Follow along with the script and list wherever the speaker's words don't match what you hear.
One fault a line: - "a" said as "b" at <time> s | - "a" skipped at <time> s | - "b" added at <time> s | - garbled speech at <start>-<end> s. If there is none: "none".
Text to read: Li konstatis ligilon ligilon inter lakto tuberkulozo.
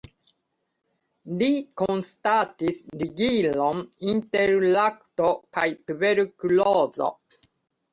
- "ligilon" skipped at 3.9 s
- "kaj" added at 5.6 s